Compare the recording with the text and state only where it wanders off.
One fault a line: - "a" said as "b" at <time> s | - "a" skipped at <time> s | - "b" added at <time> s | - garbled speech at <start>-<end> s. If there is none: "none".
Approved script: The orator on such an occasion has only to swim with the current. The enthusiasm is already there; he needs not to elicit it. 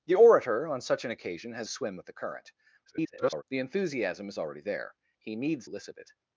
- "only to" skipped at 1.7 s
- garbled speech at 2.9-3.4 s
- "not to" skipped at 5.7 s